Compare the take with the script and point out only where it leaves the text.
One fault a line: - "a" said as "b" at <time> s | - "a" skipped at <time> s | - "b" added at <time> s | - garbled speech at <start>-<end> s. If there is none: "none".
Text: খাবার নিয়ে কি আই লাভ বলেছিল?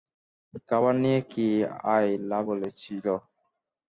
none